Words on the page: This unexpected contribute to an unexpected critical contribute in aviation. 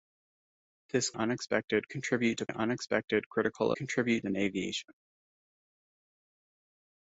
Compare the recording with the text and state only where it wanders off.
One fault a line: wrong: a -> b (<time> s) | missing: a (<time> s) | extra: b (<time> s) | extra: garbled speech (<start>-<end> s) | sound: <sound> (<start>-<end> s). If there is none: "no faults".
no faults